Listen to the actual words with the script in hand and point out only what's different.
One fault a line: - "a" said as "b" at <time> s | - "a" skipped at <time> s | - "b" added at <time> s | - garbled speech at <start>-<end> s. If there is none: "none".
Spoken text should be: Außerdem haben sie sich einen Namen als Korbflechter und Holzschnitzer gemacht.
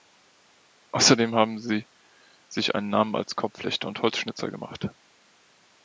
none